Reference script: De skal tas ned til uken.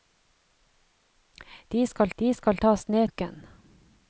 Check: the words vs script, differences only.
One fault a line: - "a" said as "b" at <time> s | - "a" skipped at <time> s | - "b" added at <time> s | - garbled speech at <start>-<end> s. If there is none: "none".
- "de skal" added at 2.2 s
- "til" skipped at 3.1 s